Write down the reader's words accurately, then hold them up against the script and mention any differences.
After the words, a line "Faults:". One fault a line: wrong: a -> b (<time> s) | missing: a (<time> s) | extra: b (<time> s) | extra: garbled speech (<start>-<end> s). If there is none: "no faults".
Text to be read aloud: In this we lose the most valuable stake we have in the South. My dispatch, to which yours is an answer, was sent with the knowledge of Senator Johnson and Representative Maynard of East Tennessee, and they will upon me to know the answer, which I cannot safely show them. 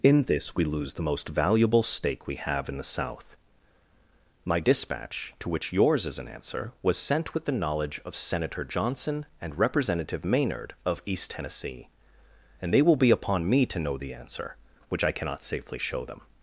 In this we lose the most valuable stake we have in the South. My dispatch, to which yours is an answer, was sent with the knowledge of Senator Johnson and Representative Maynard of East Tennessee, and they will be upon me to know the answer, which I cannot safely show them.
Faults:
extra: be (12.9 s)